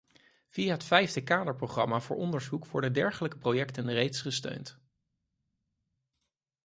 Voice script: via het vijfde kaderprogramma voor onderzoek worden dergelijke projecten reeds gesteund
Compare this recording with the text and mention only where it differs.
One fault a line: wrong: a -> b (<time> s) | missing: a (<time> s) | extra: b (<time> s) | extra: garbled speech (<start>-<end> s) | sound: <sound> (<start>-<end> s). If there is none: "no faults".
no faults